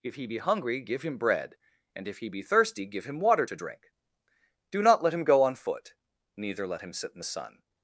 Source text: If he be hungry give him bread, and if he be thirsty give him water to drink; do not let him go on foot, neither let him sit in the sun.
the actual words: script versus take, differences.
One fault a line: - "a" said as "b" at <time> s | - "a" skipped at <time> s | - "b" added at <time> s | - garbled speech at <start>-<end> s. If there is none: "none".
none